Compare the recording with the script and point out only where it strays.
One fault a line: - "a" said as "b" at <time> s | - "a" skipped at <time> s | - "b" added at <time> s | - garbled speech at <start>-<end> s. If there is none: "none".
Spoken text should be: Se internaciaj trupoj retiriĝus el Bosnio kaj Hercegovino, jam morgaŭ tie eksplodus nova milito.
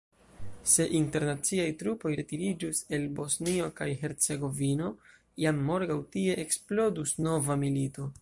none